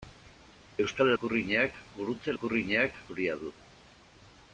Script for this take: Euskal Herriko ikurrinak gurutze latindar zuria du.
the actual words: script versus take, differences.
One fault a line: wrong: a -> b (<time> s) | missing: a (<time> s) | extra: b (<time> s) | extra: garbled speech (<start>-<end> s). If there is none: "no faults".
missing: Herriko (1.1 s)
wrong: latindar -> ikurrinak (2.3 s)